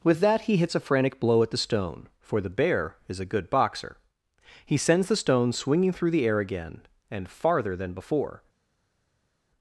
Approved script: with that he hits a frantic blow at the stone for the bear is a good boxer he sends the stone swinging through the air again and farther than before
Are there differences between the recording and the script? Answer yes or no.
no